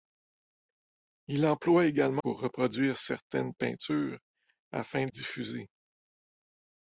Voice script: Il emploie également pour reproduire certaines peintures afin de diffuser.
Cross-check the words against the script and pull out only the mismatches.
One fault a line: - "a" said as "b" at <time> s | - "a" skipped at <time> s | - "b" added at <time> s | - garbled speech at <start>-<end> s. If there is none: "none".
none